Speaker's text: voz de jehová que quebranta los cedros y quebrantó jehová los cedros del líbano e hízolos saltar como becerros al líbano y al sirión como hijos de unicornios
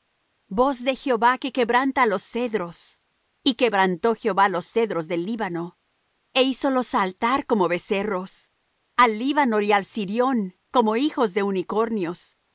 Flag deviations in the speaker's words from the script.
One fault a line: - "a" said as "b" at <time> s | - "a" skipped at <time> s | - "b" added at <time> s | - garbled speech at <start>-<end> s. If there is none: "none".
none